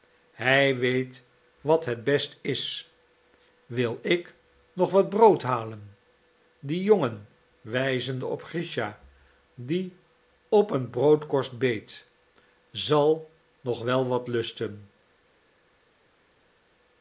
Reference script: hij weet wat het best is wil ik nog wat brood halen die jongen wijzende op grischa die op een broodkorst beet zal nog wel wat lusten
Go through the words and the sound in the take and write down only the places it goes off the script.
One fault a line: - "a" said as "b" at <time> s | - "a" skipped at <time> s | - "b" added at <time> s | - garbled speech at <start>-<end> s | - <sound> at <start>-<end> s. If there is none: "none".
none